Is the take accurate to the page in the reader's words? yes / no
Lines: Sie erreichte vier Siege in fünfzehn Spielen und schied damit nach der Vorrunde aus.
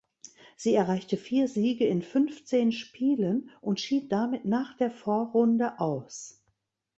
yes